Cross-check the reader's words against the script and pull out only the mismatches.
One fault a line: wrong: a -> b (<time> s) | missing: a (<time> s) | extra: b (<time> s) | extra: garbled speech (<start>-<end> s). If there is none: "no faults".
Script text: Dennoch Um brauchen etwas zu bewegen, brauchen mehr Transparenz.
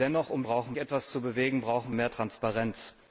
no faults